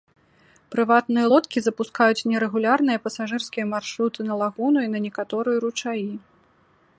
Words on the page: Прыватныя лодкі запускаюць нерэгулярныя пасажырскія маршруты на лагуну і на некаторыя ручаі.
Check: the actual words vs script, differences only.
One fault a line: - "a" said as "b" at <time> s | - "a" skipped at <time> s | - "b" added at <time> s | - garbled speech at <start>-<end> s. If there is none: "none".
none